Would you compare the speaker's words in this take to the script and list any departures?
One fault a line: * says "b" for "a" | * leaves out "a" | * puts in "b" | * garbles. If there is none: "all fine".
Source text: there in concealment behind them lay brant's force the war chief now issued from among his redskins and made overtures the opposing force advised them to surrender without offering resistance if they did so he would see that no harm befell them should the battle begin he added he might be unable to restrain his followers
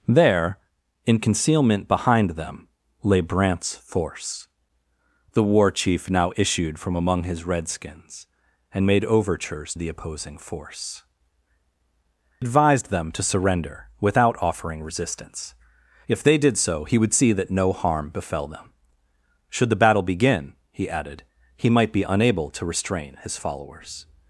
all fine